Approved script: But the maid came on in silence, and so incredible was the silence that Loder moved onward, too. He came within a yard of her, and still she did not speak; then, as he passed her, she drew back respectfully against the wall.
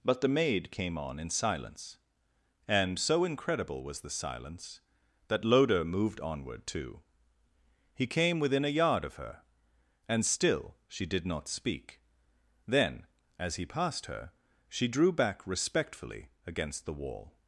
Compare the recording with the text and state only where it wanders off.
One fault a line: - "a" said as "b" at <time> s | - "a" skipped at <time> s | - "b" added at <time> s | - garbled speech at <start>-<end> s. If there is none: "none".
none